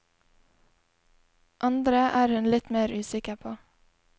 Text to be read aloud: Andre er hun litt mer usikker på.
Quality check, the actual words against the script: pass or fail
pass